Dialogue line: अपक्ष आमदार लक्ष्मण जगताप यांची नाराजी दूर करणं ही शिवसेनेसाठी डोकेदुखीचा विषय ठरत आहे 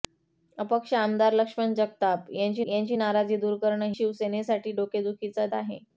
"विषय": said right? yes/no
no